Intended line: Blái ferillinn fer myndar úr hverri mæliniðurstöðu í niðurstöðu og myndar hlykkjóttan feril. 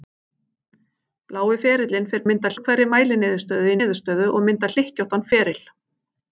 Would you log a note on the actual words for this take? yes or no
no